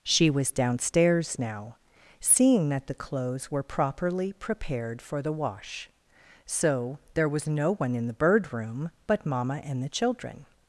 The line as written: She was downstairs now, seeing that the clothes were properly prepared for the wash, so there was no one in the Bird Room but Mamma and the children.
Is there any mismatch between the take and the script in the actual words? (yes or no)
no